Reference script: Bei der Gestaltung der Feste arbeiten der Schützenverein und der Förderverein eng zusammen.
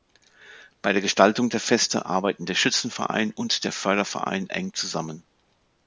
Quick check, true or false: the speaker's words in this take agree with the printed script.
true